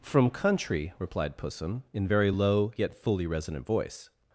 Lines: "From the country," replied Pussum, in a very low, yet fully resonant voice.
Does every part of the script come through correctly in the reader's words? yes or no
no